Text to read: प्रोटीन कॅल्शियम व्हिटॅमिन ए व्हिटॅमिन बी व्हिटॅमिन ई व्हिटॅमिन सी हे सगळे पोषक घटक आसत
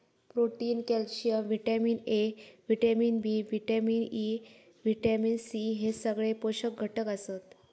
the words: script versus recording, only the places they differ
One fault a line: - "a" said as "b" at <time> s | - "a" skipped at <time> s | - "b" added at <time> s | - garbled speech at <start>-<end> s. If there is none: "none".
none